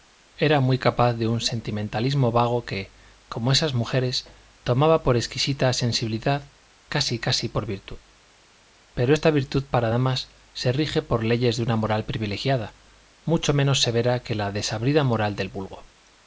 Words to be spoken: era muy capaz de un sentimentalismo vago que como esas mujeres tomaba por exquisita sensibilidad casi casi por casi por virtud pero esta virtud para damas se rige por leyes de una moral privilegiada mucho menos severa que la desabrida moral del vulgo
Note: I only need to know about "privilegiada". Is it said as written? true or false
true